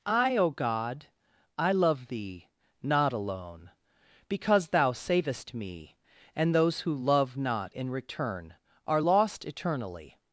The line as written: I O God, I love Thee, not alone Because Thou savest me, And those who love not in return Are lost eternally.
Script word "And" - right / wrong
right